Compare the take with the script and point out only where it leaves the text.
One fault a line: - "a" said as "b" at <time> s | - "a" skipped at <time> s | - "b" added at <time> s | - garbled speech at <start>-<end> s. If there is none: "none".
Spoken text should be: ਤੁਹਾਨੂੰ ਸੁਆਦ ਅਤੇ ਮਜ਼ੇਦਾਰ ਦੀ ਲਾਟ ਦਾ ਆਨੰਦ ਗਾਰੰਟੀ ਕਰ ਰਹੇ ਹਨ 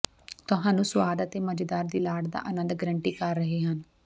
none